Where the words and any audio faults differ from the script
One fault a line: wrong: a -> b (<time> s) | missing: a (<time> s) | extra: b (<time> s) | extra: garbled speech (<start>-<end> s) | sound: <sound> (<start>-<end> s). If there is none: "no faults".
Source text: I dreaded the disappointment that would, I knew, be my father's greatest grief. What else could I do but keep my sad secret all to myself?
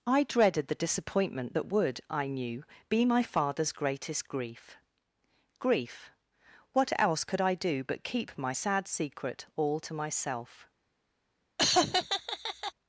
extra: grief (5.6 s)
sound: laugh (11.6-12.7 s)